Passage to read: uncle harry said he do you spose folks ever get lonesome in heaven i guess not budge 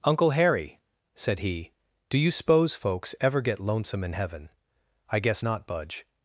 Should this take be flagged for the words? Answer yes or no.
no